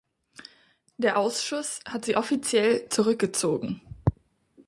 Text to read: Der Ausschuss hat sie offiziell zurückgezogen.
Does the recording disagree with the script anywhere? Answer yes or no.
no